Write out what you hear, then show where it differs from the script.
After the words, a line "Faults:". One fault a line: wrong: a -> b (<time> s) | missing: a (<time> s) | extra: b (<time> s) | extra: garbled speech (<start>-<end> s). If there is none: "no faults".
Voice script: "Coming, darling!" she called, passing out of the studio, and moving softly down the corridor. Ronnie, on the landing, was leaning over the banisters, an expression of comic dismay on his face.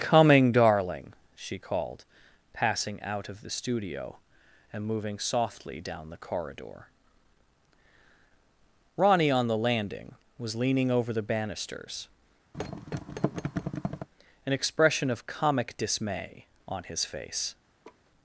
"Coming, darling!" she called, passing out of the studio, and moving softly down the corridor. Ronnie, on the landing, was leaning over the banisters, an expression of comic dismay on his face.
Faults:
no faults